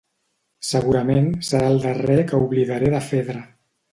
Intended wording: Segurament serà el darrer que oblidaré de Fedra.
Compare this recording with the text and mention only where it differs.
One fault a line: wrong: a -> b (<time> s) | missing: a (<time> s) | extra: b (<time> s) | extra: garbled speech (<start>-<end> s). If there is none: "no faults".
no faults